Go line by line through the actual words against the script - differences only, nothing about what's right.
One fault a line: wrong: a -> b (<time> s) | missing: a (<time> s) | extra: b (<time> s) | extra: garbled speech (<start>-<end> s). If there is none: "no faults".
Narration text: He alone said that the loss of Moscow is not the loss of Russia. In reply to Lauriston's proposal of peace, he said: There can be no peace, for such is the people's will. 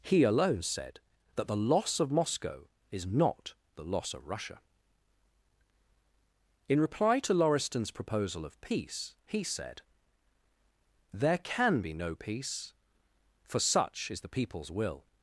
no faults